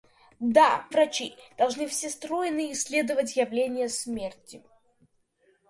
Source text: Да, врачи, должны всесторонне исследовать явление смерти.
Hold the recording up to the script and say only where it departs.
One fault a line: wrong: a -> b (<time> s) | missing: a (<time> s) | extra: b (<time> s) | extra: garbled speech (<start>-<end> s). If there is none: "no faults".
no faults